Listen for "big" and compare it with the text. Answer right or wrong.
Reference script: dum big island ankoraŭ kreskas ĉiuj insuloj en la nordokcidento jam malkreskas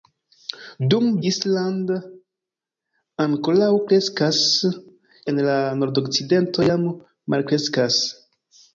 wrong